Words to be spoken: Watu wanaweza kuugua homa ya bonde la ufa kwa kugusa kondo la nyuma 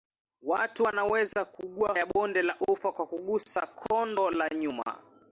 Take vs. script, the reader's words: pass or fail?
fail